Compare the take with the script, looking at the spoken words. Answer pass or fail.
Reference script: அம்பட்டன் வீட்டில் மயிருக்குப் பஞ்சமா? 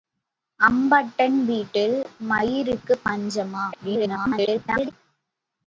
fail